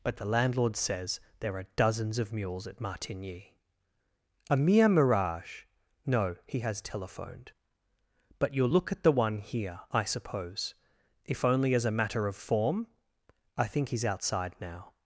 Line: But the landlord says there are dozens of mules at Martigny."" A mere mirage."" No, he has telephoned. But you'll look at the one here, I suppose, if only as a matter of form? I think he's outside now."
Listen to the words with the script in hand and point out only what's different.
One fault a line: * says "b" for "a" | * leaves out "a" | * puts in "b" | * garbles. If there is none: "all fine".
all fine